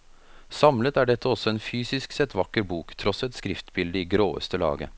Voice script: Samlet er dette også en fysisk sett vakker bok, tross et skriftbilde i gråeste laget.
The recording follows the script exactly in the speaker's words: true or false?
true